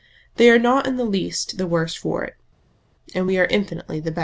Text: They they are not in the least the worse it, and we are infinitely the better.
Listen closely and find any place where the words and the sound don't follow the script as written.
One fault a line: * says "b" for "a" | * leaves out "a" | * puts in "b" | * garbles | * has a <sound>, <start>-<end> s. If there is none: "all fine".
* leaves out "they"
* puts in "for"